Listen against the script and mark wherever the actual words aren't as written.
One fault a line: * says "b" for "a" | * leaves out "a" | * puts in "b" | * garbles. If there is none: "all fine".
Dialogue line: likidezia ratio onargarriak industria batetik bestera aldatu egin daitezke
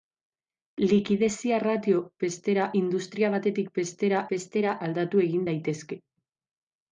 * says "bestera" for "onargarriak"
* puts in "bestera"